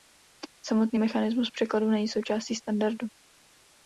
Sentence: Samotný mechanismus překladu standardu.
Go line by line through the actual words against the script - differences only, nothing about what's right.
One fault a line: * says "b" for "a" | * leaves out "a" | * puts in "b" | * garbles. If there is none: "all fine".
* puts in "není součástí"